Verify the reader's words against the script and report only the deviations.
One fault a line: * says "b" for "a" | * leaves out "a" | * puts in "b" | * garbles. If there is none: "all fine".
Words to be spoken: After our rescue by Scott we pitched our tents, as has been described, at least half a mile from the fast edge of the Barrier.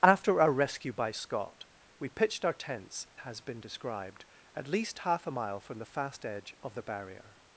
* leaves out "as"